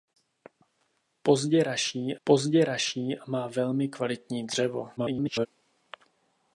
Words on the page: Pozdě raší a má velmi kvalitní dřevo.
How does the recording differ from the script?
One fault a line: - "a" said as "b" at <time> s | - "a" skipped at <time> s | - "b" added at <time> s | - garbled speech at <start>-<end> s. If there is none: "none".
- "pozdě raší" added at 2.2 s
- garbled speech at 5.0-5.5 s